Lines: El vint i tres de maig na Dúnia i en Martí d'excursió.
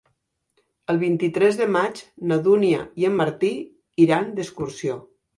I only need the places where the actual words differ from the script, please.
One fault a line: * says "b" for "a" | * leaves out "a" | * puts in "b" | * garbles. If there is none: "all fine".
* puts in "iran"